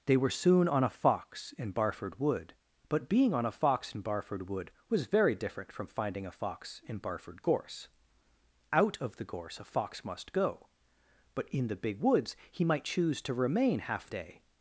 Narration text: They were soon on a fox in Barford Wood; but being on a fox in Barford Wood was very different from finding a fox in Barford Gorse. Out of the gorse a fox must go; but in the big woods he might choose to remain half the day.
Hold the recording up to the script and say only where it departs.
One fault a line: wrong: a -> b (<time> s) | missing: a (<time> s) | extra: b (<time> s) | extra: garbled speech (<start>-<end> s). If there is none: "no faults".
missing: the (14.1 s)